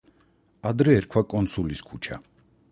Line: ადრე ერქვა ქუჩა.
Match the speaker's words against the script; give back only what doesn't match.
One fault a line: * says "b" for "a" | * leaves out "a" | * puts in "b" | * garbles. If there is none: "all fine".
* puts in "კონსულის"